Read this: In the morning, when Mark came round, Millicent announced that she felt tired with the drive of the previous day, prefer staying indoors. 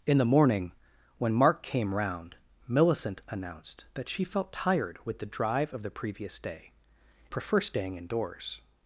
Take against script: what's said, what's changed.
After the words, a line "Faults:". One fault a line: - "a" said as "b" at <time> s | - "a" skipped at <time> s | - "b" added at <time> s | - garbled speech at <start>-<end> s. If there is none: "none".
In the morning, when Mark came round, Millicent announced that she felt tired with the drive of the previous day, prefer staying indoors.
Faults:
none